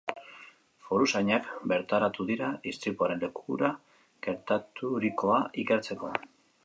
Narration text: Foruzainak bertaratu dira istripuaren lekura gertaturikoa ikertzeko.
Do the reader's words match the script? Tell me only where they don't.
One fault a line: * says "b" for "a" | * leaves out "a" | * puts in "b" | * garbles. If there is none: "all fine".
all fine